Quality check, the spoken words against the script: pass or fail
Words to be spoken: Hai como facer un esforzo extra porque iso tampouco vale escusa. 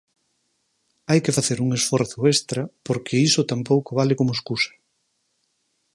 fail